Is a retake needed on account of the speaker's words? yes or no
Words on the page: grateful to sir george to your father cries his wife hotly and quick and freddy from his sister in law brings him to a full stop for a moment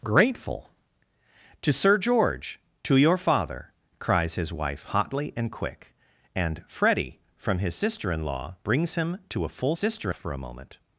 yes